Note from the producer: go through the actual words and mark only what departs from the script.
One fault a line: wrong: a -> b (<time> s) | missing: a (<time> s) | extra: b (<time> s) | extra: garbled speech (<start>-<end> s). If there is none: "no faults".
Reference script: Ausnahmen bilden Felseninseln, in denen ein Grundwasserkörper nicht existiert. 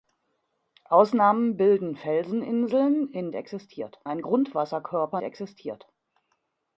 wrong: denen -> existiert (3.3 s)
missing: nicht (5.2 s)